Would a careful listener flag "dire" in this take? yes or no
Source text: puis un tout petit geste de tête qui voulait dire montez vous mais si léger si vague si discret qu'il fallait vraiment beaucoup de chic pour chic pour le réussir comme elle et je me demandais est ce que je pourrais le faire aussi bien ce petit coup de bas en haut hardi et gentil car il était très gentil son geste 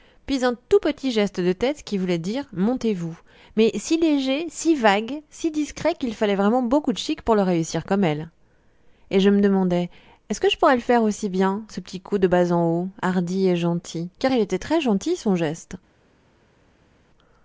no